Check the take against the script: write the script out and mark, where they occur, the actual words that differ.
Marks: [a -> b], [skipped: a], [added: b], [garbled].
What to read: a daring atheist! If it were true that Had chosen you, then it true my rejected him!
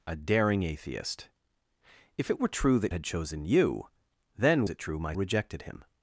a daring atheist! If it were true that Had chosen you, then it true my rejected him!